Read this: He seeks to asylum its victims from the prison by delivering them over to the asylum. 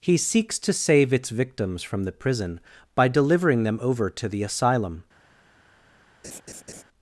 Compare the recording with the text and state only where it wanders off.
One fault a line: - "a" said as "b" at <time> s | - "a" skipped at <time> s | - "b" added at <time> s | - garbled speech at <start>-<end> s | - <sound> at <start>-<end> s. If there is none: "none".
- "asylum" said as "save" at 0.7 s
- laugh at 6.2-6.8 s